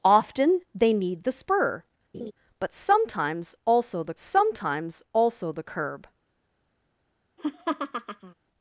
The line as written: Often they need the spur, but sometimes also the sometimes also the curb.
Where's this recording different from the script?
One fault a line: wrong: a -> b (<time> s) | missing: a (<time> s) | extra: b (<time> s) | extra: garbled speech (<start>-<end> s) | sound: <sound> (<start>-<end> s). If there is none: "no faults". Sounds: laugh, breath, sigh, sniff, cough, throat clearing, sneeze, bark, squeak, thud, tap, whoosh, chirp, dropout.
sound: laugh (2.1-2.3 s)
sound: laugh (7.4-8.3 s)